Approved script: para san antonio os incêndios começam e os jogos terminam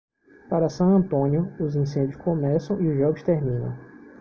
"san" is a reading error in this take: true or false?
false